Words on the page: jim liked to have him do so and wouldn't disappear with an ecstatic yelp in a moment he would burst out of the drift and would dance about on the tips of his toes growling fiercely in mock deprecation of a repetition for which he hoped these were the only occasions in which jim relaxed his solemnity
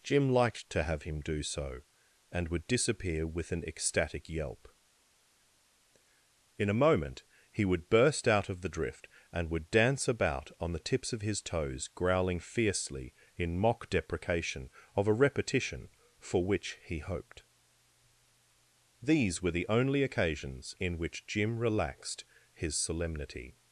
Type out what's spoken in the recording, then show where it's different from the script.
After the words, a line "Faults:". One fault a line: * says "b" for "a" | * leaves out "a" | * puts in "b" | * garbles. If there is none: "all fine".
jim liked to have him do so and would disappear with an ecstatic yelp in a moment he would burst out of the drift and would dance about on the tips of his toes growling fiercely in mock deprecation of a repetition for which he hoped these were the only occasions in which jim relaxed his solemnity
Faults:
* says "would" for "wouldn't"